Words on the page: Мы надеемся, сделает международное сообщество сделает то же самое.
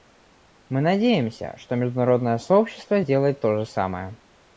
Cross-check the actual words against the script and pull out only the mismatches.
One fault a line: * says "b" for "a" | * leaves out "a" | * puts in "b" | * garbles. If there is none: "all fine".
* says "что" for "сделает"